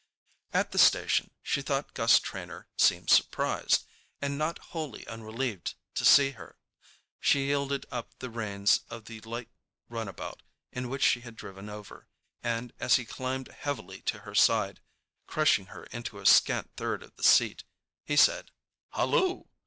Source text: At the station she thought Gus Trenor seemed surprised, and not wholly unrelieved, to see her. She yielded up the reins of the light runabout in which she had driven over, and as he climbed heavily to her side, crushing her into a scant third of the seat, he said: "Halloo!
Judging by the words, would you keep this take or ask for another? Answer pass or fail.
pass